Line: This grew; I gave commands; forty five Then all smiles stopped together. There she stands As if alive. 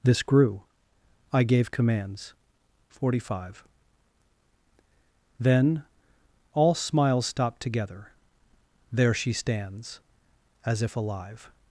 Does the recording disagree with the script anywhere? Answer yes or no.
no